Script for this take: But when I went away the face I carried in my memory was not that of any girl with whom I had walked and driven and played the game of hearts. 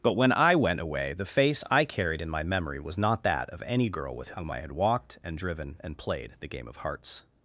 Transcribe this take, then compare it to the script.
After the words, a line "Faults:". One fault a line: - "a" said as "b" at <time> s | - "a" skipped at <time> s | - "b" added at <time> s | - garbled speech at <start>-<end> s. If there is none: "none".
But when I went away the face I carried in my memory was not that of any girl with whom I had walked and driven and played the game of hearts.
Faults:
none